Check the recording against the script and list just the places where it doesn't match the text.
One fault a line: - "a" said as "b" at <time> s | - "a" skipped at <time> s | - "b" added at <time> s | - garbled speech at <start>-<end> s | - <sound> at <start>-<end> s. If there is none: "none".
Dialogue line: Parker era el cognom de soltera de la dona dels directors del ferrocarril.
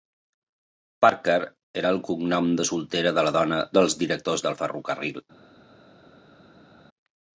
none